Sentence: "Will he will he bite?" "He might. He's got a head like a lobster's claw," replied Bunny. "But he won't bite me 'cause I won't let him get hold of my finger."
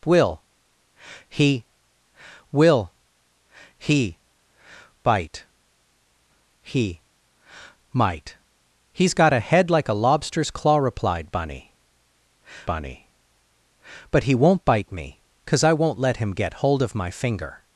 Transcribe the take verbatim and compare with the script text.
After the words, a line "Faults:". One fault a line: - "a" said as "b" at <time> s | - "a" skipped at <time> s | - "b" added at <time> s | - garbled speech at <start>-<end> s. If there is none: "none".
"Will he will he bite?" "He might. He's got a head like a lobster's claw," replied Bunny Bunny. "But he won't bite me 'cause I won't let him get hold of my finger."
Faults:
- "Bunny" added at 12.6 s